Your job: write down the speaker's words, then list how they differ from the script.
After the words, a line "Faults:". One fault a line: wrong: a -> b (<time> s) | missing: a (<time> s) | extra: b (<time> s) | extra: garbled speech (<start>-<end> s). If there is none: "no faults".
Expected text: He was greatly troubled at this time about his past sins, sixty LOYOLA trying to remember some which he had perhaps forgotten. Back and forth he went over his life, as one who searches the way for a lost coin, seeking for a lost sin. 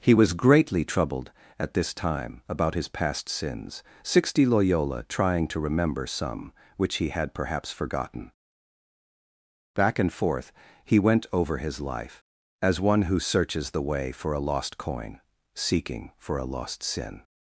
He was greatly troubled at this time about his past sins, sixty LOYOLA trying to remember some which he had perhaps forgotten. Back and forth he went over his life, as one who searches the way for a lost coin, seeking for a lost sin.
Faults:
no faults